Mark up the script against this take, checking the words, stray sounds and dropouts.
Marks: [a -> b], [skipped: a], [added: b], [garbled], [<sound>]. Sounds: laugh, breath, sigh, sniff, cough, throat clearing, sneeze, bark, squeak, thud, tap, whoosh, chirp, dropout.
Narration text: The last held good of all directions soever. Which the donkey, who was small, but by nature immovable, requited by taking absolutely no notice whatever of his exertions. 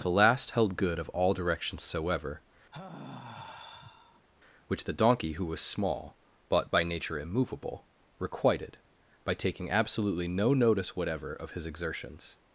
The last held good of all directions soever. [sigh] Which the donkey, who was small, but by nature immovable, requited by taking absolutely no notice whatever of his exertions.